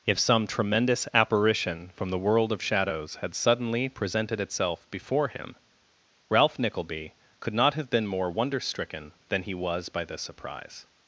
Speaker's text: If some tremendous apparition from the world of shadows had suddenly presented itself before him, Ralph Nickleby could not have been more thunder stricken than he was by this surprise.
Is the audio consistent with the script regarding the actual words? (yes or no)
no